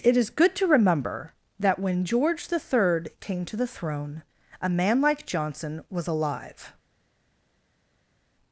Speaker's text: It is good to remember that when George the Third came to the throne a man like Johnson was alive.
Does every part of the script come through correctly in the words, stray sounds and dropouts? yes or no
yes